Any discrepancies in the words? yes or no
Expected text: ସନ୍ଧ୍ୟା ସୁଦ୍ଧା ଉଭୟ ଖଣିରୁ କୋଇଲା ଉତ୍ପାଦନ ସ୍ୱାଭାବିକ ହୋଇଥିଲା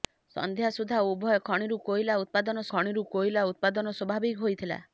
yes